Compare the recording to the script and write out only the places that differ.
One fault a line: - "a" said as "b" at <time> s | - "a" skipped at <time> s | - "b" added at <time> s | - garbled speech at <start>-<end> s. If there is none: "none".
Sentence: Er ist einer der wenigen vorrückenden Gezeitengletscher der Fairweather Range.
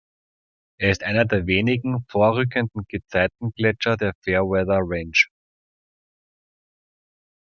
none